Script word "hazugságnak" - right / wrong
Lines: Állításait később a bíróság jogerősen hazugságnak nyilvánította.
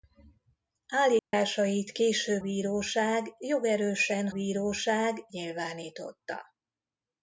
wrong